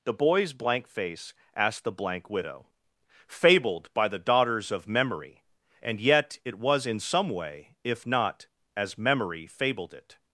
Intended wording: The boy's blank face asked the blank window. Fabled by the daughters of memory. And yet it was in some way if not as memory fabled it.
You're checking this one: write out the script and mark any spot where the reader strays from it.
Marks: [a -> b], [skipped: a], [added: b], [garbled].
The boy's blank face asked the blank [window. -> widow] Fabled by the daughters of memory. And yet it was in some way if not as memory fabled it.